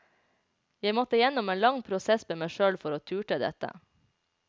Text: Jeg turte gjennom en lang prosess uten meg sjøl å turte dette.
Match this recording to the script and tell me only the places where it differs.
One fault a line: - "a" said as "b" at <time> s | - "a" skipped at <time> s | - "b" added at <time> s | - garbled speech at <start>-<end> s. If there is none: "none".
- "turte" said as "måtte" at 1.0 s
- "uten" said as "med" at 2.3 s
- "for" added at 2.8 s